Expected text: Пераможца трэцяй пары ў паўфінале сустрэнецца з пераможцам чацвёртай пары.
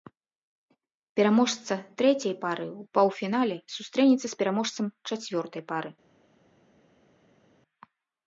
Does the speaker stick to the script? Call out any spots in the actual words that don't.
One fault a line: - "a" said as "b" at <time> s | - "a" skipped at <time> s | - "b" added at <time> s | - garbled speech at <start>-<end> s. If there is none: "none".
none